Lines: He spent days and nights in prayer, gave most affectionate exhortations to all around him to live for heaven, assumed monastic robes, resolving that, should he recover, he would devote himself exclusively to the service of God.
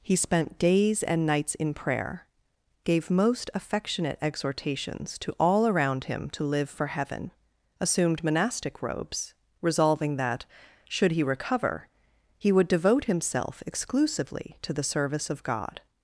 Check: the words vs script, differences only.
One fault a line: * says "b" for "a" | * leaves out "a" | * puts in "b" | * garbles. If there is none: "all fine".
all fine